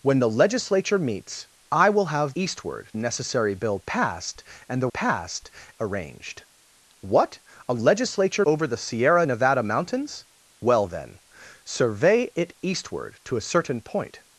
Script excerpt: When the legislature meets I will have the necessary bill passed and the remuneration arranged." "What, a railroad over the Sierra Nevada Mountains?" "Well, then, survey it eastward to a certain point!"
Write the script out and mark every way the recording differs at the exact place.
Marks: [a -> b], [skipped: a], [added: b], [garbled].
When the legislature meets I will have [the -> eastward] necessary bill passed and the [remuneration -> passed] arranged." "What, a [railroad -> legislature] over the Sierra Nevada Mountains?" "Well, then, survey it eastward to a certain point!"